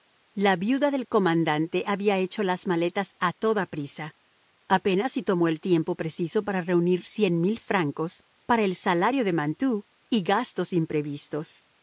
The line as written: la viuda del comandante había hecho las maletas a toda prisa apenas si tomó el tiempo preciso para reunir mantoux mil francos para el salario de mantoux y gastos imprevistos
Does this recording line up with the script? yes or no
no